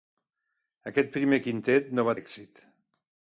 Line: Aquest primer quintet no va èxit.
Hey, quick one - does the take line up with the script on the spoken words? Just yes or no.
yes